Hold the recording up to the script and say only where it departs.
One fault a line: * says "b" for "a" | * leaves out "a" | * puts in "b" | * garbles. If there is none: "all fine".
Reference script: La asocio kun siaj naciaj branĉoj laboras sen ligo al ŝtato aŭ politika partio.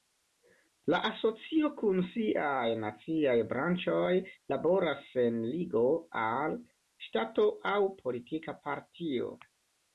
all fine